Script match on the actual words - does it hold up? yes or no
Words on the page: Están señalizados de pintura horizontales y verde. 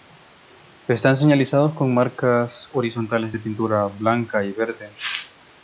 no